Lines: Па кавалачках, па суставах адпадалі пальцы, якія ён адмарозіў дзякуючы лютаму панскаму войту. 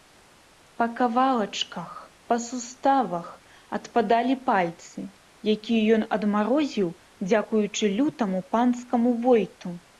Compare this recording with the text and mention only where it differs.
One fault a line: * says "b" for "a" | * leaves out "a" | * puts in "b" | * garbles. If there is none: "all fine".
all fine